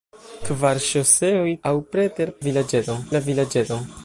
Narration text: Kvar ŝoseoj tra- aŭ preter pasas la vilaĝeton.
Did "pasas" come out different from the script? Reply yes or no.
yes